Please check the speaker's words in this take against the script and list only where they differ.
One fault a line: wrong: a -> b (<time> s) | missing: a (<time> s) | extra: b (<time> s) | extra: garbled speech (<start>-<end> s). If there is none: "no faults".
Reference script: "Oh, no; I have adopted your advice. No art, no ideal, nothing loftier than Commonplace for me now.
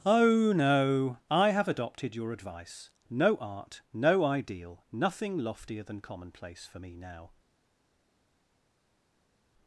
no faults